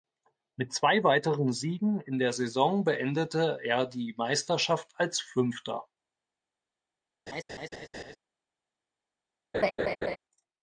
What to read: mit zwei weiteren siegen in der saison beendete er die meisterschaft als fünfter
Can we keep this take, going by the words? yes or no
yes